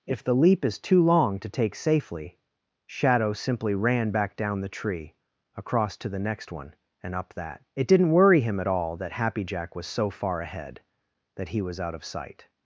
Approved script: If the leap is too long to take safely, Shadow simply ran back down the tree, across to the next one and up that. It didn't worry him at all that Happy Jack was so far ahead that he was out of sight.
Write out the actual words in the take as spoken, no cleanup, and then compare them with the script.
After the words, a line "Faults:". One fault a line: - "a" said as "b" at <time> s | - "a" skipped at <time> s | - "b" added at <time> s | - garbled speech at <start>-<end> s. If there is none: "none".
If the leap is too long to take safely, Shadow simply ran back down the tree, across to the next one and up that. It didn't worry him at all that Happy Jack was so far ahead that he was out of sight.
Faults:
none